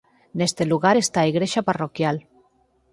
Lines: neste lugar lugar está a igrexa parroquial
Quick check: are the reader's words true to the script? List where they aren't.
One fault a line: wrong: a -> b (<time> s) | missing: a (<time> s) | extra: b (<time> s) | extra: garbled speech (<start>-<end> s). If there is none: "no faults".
missing: lugar (1.0 s)